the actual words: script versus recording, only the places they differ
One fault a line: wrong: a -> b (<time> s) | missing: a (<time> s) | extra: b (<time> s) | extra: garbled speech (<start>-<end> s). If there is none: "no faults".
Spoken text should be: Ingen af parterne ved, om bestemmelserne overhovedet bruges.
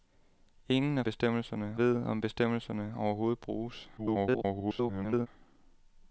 wrong: parterne -> bestemmelserne (1.0 s)
extra: garbled speech (4.0-5.3 s)